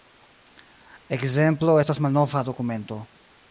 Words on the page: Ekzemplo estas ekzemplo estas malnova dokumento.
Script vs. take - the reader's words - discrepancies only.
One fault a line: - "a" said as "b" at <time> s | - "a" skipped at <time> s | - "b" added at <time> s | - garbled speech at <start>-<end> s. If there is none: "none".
- "ekzemplo estas" skipped at 2.0 s